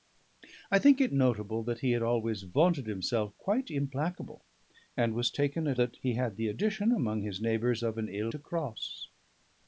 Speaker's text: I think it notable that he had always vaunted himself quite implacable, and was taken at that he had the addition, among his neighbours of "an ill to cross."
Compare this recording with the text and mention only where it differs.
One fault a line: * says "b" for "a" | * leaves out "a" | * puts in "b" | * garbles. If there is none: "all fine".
all fine